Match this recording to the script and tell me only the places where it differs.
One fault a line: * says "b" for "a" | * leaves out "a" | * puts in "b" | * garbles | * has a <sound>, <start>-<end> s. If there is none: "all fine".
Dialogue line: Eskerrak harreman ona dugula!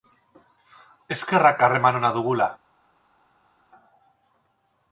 all fine